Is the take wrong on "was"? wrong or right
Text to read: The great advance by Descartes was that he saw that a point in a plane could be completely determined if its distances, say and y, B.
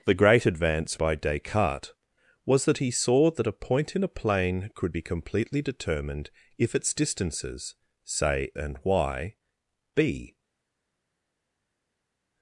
right